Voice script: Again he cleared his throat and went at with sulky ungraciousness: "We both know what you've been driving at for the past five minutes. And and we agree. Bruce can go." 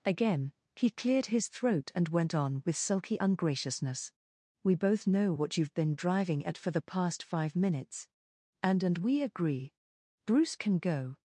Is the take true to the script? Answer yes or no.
no